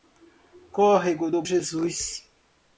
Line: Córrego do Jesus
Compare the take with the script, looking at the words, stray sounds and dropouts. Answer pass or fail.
pass